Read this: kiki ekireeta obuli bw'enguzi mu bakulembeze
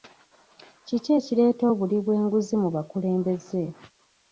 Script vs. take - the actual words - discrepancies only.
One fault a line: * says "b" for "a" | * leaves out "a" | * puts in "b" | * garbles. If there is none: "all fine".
all fine